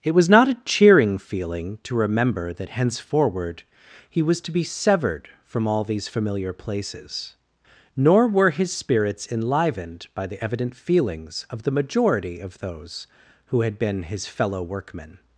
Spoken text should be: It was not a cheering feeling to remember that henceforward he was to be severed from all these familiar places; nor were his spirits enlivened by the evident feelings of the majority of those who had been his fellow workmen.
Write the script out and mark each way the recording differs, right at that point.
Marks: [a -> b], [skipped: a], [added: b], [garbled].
It was not a cheering feeling to remember that henceforward he was to be severed from all these familiar places; nor were his spirits enlivened by the evident feelings of the majority of those who had been his fellow workmen.